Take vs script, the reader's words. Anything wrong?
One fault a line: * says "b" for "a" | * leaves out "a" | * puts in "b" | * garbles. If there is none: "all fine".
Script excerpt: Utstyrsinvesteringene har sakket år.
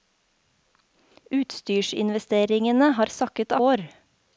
all fine